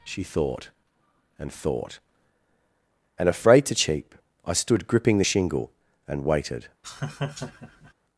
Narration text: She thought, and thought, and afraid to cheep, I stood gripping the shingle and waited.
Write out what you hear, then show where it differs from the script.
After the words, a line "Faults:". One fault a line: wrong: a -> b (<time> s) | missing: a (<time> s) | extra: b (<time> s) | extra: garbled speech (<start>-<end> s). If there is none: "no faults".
She thought, and thought, and afraid to cheep, I stood gripping the shingle and waited.
Faults:
no faults